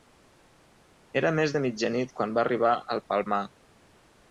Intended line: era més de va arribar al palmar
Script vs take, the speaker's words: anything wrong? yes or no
yes